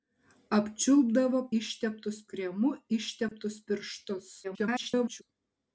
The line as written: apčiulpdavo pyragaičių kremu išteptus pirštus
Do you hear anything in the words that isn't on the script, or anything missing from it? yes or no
yes